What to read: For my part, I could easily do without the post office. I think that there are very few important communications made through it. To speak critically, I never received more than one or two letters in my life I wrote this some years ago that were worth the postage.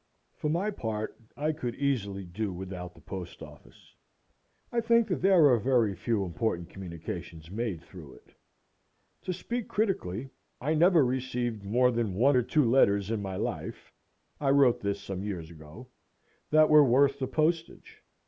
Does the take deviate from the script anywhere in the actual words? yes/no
no